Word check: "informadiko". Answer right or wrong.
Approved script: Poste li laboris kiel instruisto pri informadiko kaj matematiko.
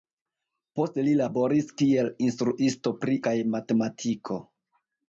wrong